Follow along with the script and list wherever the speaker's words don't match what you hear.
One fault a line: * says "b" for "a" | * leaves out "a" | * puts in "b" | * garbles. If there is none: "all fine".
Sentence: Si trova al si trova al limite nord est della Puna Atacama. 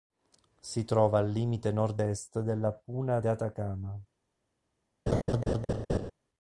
* leaves out "si trova al"
* puts in "de"